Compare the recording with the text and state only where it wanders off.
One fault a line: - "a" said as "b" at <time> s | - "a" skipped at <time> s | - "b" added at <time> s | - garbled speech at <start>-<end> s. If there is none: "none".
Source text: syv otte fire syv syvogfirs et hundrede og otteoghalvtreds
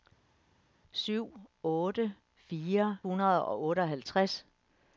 - "syv syvogfirs et" skipped at 3.0 s